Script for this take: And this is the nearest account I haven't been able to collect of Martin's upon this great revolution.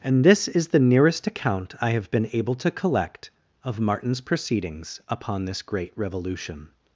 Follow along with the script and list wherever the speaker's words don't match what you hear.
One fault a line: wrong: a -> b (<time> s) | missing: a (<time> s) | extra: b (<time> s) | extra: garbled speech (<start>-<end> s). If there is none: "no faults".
wrong: haven't -> have (1.9 s)
extra: proceedings (4.2 s)